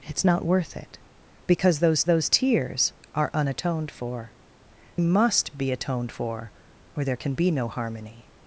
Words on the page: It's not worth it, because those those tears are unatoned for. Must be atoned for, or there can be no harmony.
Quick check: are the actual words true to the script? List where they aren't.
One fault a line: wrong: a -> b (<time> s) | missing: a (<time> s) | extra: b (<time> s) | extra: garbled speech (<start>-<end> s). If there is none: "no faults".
no faults